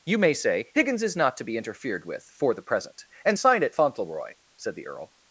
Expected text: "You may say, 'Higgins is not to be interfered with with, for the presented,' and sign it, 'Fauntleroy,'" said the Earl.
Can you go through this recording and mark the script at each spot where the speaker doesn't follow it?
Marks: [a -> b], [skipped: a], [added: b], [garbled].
"You may say, 'Higgins is not to be interfered with [skipped: with,] for the [presented,' -> present] and sign it, 'Fauntleroy,'" said the Earl.